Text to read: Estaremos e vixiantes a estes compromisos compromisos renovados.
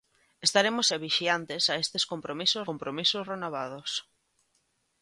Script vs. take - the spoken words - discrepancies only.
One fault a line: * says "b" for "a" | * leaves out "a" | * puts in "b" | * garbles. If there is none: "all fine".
all fine